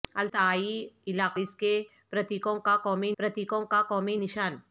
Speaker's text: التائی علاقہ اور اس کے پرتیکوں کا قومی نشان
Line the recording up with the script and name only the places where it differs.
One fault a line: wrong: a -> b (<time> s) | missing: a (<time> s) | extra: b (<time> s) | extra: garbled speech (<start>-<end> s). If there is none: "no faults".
missing: اور (1.4 s)
extra: پرتیکوں کا قومی (3.2 s)